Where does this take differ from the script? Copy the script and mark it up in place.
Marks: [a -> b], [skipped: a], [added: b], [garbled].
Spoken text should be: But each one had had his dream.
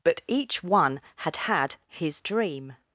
But each one had had his dream.